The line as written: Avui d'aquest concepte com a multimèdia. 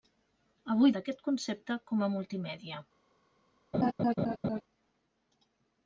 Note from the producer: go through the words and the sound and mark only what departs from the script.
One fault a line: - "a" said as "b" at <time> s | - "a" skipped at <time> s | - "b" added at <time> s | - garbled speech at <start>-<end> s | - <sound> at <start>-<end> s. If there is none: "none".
- laugh at 3.7-4.6 s